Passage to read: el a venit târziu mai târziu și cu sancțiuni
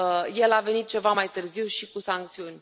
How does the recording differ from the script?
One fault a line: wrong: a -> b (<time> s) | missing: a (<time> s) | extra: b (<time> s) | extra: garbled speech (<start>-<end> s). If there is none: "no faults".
wrong: târziu -> ceva (0.9 s)